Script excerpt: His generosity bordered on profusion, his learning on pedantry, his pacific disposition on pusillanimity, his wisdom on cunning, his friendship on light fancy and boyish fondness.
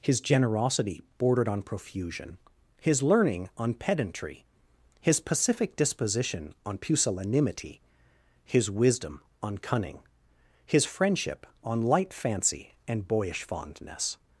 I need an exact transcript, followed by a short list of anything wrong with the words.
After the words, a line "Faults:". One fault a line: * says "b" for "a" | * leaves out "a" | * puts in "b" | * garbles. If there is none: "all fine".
His generosity bordered on profusion, his learning on pedantry, his pacific disposition on pusillanimity, his wisdom on cunning, his friendship on light fancy and boyish fondness.
Faults:
all fine